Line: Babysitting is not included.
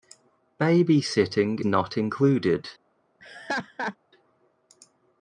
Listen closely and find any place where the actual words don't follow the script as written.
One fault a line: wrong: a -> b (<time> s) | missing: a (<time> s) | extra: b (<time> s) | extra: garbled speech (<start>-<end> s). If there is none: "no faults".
missing: is (1.6 s)